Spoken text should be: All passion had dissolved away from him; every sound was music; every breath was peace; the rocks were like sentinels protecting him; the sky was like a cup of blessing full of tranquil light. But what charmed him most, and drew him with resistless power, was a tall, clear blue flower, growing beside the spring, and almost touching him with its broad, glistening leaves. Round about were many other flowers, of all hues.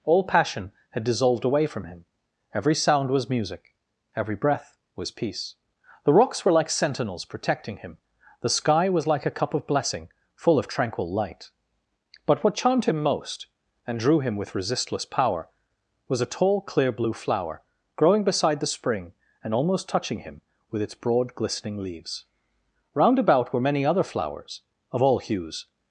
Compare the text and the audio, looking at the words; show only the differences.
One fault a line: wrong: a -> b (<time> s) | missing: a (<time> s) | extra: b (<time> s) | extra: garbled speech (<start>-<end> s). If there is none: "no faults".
no faults